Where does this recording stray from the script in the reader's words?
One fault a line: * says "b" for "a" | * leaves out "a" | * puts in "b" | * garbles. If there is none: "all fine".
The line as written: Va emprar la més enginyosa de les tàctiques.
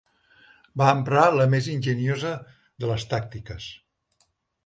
all fine